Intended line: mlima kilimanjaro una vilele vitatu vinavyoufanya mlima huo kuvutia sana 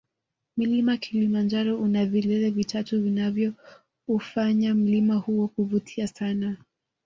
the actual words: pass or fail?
pass